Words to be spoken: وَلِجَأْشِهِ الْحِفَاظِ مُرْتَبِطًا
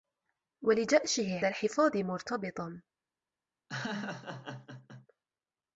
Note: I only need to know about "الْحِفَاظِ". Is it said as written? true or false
true